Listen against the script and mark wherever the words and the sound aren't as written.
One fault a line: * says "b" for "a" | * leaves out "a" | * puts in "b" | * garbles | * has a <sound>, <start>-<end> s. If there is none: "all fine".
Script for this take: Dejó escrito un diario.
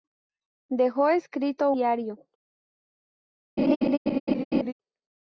* leaves out "un"
* has a laugh, 3.6-4.7 s